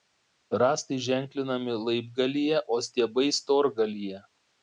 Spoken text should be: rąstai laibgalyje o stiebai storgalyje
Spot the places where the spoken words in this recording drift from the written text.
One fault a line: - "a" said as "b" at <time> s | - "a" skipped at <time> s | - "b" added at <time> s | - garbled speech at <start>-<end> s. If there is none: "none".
- "ženklinami" added at 1.1 s